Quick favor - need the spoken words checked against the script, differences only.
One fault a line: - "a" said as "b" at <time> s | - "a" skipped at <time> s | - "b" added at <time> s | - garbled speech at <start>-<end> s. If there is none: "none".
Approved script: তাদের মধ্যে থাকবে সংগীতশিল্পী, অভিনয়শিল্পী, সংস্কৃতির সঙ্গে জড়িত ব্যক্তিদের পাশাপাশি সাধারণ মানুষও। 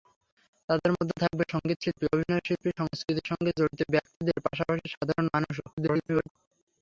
- garbled speech at 5.7-6.3 s